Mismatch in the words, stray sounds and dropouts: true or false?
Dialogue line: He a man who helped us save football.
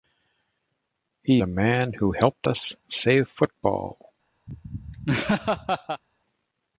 true